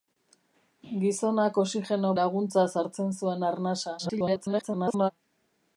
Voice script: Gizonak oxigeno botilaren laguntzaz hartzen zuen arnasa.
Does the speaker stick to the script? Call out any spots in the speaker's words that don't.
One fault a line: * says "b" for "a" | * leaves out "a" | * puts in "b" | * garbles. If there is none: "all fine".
* leaves out "botilaren"
* garbles